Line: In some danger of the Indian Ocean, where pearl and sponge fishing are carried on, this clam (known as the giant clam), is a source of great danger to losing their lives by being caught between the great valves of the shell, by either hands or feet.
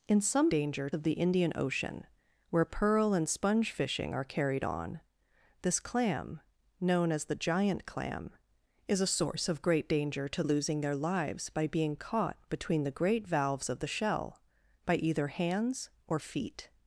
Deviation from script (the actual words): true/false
false